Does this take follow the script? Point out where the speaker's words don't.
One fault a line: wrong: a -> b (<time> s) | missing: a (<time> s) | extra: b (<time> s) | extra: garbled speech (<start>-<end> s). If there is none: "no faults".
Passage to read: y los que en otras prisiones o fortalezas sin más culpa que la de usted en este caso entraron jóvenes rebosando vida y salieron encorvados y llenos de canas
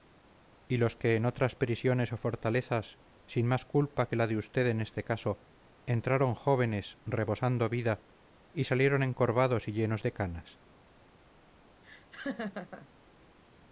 no faults